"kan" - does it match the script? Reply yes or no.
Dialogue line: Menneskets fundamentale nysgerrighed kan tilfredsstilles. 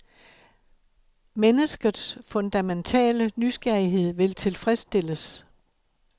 no